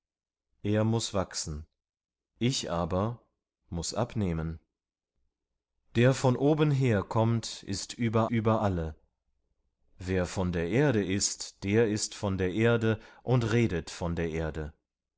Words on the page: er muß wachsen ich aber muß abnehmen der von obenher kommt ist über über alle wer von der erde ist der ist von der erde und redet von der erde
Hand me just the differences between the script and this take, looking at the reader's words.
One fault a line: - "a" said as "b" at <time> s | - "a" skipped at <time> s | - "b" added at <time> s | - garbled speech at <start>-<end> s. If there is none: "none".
none